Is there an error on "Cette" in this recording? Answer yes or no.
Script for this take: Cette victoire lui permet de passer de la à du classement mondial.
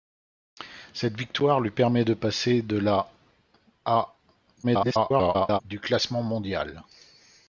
no